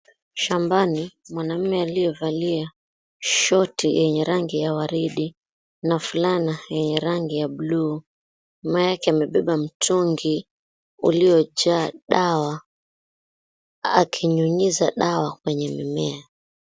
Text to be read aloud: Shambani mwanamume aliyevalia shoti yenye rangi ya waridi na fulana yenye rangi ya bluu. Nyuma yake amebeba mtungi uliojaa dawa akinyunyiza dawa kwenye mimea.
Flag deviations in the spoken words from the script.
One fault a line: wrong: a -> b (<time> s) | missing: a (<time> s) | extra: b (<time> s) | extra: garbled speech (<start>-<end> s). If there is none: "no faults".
no faults